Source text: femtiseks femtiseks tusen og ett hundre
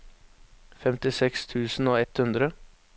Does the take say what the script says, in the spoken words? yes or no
no